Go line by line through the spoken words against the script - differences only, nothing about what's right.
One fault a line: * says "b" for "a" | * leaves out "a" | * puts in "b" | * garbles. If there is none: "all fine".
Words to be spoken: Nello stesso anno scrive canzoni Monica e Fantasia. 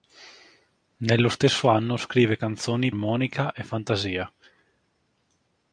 all fine